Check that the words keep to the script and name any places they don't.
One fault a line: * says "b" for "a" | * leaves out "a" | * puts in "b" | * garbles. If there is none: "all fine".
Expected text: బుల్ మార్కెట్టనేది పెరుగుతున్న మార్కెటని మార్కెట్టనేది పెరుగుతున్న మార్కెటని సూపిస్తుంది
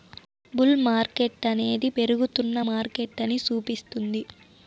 * leaves out "మార్కెట్టనేది పెరుగుతున్న మార్కెటని"